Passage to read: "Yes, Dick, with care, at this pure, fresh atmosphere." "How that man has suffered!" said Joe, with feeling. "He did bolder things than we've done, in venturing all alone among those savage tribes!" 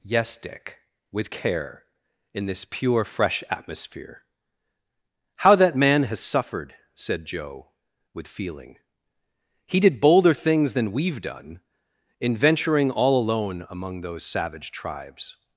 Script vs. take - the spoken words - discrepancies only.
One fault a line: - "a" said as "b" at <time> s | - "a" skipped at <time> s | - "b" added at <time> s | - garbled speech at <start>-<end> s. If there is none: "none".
- "at" said as "in" at 2.3 s